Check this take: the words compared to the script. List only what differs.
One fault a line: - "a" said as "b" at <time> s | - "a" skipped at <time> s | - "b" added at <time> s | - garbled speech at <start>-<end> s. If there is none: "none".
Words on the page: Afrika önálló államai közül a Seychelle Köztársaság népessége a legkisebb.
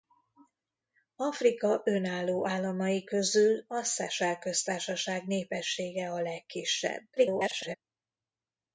- garbled speech at 7.2-7.8 s